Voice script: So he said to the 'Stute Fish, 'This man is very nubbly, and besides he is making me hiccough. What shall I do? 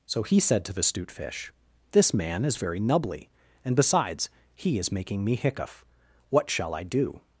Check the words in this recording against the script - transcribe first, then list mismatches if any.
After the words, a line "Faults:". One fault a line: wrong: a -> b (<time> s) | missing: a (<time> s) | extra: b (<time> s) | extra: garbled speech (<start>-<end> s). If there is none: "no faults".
So he said to the 'Stute Fish, 'This man is very nubbly, and besides he is making me hiccough. What shall I do?
Faults:
no faults